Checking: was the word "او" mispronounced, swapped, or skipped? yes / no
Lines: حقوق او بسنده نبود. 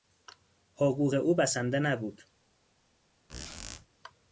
no